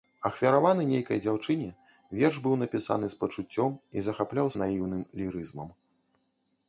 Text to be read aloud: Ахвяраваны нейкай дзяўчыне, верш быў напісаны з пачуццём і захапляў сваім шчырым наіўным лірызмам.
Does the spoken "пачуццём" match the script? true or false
true